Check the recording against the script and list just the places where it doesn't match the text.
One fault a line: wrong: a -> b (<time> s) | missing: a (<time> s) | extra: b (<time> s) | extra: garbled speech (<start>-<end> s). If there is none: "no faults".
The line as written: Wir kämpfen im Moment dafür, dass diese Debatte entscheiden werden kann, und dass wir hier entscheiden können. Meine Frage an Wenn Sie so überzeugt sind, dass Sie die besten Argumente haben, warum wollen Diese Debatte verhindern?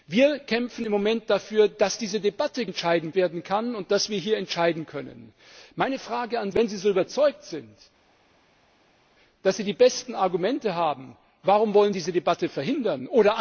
no faults